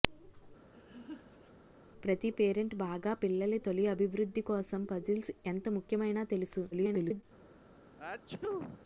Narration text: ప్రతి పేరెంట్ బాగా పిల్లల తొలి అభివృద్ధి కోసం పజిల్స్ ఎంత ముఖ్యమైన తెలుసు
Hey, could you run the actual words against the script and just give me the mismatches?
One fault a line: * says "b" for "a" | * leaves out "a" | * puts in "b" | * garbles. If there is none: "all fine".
* garbles